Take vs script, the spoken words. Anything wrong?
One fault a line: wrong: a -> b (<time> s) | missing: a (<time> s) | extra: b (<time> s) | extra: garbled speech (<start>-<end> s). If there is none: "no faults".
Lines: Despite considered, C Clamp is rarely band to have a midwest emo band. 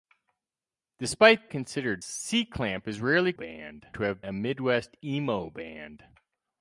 no faults